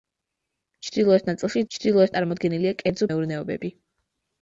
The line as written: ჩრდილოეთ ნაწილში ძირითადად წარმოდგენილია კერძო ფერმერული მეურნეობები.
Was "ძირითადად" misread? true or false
true